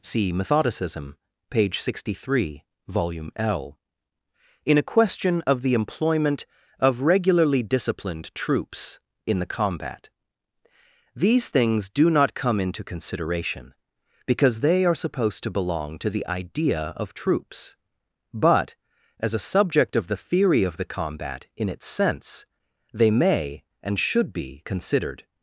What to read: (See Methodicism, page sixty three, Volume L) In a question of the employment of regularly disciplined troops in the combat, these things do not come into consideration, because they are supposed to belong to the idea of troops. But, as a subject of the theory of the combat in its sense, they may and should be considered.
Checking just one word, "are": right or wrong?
right